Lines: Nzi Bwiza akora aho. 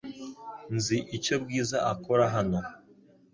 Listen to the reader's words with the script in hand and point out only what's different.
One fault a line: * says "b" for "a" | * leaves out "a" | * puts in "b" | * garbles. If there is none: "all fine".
* puts in "icyo"
* says "hano" for "aho"